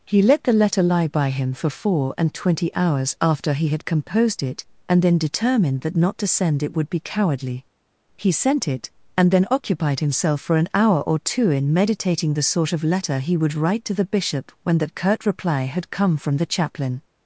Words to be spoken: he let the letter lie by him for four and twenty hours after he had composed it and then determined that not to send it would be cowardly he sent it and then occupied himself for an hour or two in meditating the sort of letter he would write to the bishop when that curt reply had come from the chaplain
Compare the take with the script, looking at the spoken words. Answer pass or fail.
pass